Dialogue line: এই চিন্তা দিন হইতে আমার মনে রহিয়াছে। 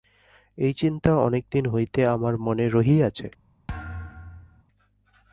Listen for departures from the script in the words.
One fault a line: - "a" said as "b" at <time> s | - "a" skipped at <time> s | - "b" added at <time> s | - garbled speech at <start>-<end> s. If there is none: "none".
- "অনেক" added at 1.2 s